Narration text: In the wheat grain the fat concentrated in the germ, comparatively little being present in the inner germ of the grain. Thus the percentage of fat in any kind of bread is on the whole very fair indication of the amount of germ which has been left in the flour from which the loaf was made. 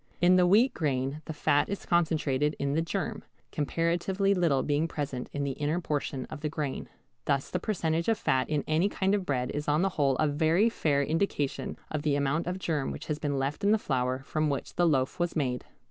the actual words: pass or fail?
fail